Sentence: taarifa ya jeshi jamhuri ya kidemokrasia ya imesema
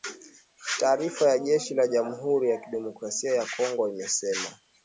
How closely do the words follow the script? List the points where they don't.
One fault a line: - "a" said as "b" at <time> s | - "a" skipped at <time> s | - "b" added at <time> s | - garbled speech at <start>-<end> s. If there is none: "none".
- "la" added at 1.7 s
- "kongo" added at 3.6 s